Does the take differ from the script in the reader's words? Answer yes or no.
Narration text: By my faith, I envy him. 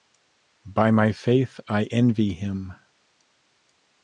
no